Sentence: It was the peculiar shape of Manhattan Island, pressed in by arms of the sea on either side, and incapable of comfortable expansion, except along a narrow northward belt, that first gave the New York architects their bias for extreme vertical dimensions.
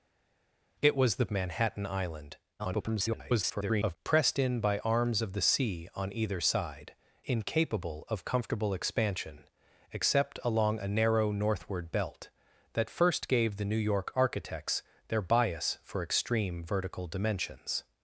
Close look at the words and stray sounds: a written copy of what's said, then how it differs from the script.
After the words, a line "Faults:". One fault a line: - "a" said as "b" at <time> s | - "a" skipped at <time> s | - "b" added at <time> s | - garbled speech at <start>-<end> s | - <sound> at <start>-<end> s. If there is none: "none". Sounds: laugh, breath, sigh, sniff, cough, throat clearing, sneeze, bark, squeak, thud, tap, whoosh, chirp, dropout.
It was the Manhattan Island, [garbled] pressed in by arms of the sea on either side, incapable of comfortable expansion, except along a narrow northward belt, that first gave the New York architects their bias for extreme vertical dimensions.
Faults:
- "peculiar shape of" skipped at 1.3 s
- garbled speech at 2.6-4.0 s
- "and" skipped at 6.9 s